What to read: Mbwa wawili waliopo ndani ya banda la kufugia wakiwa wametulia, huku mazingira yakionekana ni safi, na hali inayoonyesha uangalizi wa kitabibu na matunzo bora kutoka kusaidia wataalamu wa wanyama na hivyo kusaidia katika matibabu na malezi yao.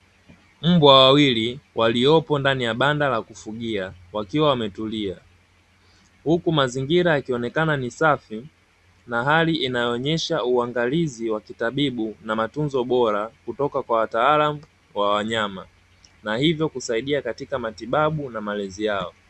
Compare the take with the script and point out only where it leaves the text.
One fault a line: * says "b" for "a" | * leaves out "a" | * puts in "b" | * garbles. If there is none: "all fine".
* says "kwa" for "kusaidia"